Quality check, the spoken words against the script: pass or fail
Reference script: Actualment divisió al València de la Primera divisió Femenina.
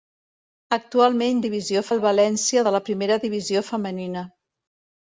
pass